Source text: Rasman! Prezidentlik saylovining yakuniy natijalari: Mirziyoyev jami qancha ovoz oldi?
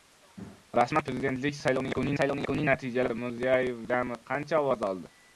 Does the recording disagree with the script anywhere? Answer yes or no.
yes